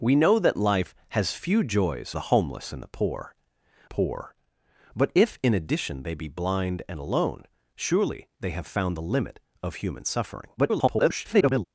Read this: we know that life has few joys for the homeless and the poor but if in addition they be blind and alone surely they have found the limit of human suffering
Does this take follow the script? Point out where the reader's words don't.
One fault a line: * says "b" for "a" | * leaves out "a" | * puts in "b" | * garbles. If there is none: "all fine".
* leaves out "for"
* puts in "poor"
* garbles